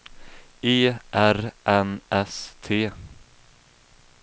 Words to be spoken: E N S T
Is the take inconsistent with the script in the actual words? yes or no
yes